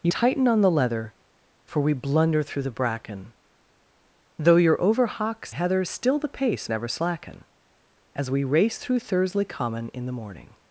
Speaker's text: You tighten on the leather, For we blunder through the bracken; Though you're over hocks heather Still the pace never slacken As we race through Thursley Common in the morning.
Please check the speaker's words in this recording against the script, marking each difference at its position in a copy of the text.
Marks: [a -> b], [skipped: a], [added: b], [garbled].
You tighten on the leather, For we blunder through the bracken; Though you're over hocks heather Still the pace never slacken As we race through Thursley Common in the morning.